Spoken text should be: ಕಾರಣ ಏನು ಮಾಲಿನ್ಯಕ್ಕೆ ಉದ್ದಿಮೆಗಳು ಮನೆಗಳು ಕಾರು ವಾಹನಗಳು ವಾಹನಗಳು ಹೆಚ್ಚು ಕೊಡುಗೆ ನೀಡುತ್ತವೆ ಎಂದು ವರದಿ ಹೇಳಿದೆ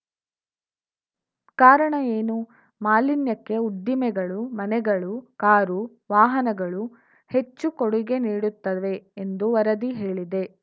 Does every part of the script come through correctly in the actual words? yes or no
no